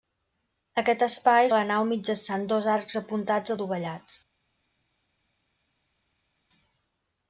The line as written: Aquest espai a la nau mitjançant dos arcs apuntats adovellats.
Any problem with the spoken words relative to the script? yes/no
no